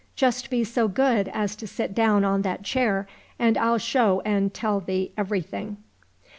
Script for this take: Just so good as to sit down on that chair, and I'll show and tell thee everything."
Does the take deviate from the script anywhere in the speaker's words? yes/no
yes